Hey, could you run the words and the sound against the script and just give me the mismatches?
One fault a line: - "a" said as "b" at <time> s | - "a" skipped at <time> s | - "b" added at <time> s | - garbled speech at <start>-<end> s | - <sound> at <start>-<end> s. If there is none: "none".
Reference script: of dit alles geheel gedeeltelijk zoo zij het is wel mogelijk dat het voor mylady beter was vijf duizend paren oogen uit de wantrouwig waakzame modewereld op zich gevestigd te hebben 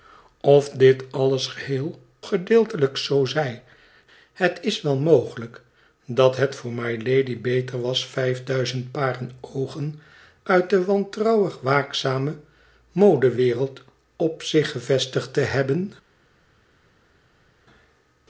none